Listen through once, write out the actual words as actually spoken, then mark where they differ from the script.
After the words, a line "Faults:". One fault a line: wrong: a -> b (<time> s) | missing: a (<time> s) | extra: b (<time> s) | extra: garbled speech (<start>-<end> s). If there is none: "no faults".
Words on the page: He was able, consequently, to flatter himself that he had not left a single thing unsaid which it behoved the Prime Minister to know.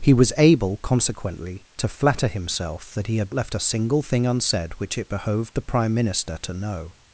He was able, consequently, to flatter himself that he had left a single thing unsaid which it behoved the Prime Minister to know.
Faults:
missing: not (3.4 s)